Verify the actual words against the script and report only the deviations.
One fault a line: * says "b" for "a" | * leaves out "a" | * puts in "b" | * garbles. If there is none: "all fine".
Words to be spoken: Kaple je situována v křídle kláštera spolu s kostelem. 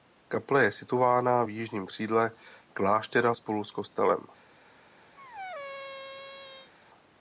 * puts in "jižním"